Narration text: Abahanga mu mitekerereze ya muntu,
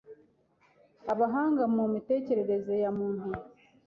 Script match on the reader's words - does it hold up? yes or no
yes